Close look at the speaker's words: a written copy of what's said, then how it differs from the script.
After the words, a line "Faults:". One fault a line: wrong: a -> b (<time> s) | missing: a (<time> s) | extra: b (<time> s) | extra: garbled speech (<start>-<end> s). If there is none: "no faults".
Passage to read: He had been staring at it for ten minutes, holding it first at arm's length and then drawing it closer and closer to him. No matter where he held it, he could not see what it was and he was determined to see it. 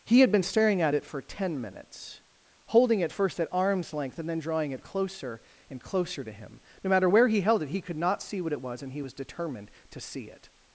He had been staring at it for ten minutes, holding it first at arm's length and then drawing it closer and closer to him. No matter where he held it, he could not see what it was and he was determined to see it.
Faults:
no faults